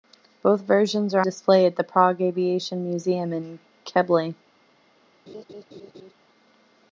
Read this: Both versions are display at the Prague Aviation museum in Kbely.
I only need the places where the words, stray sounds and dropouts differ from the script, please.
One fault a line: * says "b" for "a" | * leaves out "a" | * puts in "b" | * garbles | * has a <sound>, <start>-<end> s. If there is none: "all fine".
* has a laugh, 5.3-6.1 s